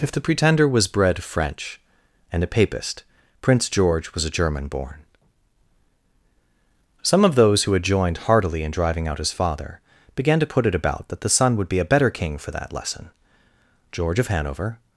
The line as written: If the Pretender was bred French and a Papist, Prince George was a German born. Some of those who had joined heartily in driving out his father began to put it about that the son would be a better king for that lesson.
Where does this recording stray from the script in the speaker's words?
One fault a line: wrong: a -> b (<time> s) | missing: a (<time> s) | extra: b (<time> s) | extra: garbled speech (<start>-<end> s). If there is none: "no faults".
extra: George of Hanover (13.9 s)